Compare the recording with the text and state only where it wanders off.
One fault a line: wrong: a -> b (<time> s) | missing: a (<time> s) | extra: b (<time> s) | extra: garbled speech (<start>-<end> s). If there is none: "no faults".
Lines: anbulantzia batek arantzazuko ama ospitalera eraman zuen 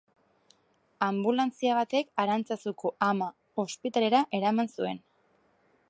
no faults